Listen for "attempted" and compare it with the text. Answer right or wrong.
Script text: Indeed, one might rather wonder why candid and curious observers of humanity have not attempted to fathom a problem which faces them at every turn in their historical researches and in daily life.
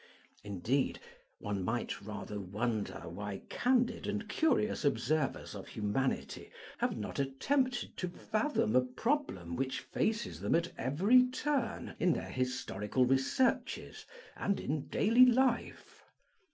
right